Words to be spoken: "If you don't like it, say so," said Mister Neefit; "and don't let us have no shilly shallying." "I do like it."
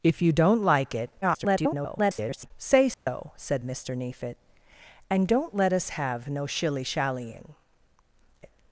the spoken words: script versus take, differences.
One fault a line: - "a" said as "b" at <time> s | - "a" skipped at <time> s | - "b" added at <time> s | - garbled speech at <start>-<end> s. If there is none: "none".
- garbled speech at 1.2-2.5 s
- "I do like" skipped at 7.5 s